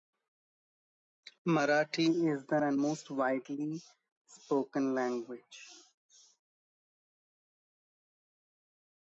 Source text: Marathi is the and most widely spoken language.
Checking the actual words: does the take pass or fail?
pass